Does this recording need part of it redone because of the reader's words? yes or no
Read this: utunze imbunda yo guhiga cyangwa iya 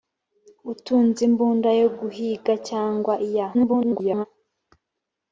yes